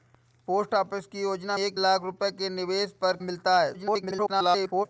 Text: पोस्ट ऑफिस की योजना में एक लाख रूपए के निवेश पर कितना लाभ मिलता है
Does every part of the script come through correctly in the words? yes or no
no